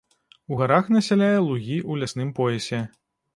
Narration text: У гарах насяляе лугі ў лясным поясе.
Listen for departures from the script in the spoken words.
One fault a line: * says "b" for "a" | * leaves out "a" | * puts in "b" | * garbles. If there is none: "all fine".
all fine